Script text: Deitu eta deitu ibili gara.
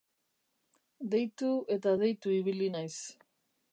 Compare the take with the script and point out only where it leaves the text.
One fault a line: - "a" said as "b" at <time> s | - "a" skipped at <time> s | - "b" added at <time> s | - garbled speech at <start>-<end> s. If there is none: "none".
- "gara" said as "naiz" at 2.7 s